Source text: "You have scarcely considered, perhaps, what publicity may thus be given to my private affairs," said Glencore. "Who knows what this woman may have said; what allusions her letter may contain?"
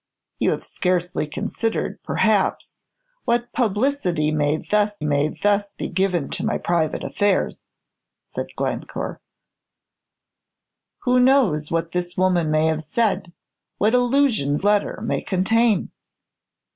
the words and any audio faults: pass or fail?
fail